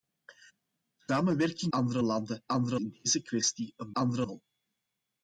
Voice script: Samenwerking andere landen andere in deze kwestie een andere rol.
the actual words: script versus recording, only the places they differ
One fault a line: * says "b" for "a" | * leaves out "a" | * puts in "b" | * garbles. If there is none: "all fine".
all fine